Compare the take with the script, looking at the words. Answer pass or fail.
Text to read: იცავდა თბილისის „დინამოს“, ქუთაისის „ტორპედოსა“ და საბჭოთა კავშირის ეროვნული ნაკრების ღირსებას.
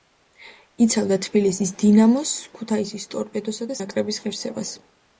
fail